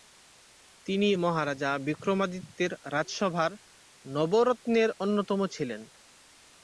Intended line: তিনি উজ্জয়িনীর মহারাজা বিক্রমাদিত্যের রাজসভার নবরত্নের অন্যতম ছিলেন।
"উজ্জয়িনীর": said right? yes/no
no